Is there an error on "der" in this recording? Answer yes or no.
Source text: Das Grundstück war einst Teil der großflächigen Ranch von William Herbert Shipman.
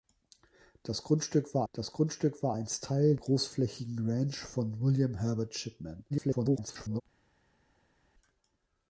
yes